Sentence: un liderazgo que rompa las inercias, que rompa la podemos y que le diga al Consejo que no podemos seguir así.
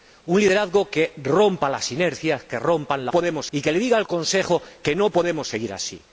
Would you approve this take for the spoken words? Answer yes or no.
yes